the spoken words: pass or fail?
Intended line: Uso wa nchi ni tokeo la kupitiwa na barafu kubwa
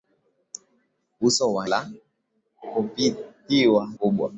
fail